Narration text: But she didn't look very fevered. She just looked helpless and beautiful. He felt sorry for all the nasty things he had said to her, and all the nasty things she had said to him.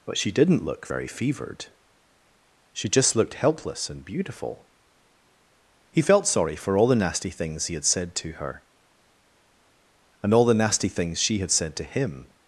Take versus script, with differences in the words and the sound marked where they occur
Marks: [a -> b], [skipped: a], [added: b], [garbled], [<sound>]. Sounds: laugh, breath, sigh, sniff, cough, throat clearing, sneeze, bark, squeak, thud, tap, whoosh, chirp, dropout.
But she didn't look very fevered. She just looked helpless and beautiful. He felt sorry for all the nasty things he had said to her, and all the nasty things she had said to him.